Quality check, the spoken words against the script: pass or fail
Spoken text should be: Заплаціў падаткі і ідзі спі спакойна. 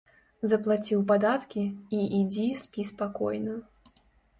pass